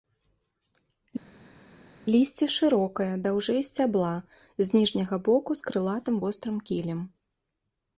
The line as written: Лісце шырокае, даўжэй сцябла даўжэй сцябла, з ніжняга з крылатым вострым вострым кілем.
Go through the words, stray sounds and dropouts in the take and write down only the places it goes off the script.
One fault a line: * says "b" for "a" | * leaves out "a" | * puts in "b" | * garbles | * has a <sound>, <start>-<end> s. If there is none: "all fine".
* leaves out "даўжэй сцябла"
* puts in "боку"
* leaves out "вострым"